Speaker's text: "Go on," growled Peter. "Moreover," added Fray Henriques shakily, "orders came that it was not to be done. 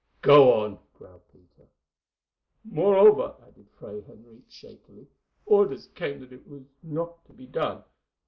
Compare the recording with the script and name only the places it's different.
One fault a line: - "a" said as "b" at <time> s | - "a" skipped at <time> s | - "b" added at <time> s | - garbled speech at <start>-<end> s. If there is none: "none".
none